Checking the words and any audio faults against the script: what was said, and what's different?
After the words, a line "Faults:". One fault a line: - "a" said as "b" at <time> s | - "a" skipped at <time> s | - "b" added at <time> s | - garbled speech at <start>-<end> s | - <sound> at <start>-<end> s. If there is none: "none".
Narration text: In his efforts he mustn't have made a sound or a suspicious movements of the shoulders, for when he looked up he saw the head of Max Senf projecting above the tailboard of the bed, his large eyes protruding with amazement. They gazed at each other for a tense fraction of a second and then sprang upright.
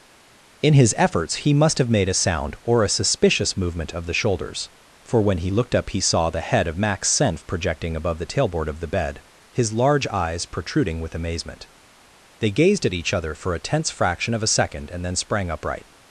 In his efforts he must have made a sound or a suspicious movement of the shoulders, for when he looked up he saw the head of Max Senf projecting above the tailboard of the bed, his large eyes protruding with amazement. They gazed at each other for a tense fraction of a second and then sprang upright.
Faults:
- "mustn't" said as "must" at 1.5 s
- "movements" said as "movement" at 3.6 s